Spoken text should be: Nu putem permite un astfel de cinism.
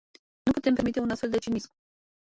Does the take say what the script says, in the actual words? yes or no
yes